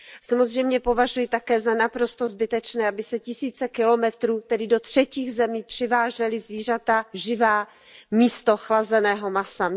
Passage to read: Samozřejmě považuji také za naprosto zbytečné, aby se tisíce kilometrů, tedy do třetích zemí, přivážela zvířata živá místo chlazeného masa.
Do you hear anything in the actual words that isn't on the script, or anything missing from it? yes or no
no